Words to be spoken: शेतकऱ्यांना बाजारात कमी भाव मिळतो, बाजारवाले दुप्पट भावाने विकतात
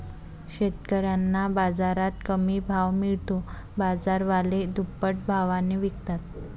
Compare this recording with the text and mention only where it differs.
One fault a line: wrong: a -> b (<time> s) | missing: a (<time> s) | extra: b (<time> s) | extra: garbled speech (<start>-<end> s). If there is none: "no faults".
no faults